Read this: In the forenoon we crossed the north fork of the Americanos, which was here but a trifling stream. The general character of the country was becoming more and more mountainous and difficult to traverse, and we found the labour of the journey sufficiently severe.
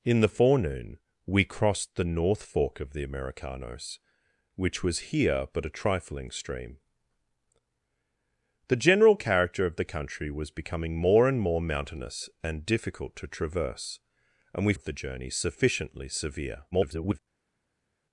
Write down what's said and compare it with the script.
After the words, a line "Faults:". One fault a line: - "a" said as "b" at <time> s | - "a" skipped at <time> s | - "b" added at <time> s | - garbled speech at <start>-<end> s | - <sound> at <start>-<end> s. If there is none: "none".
In the forenoon we crossed the north fork of the Americanos, which was here but a trifling stream. The general character of the country was becoming more and more mountainous and difficult to traverse, and we of the journey sufficiently severe. [garbled]
Faults:
- "found the labour" skipped at 14.7 s
- garbled speech at 16.7-17.2 s